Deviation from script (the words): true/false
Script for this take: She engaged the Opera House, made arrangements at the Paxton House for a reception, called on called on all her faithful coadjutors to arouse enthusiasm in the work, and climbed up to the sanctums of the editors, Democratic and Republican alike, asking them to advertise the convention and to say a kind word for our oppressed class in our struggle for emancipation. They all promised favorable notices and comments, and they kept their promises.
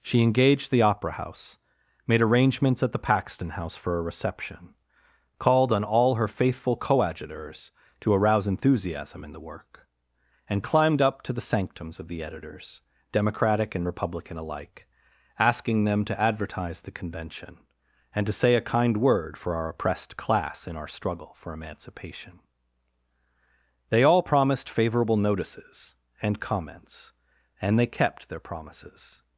true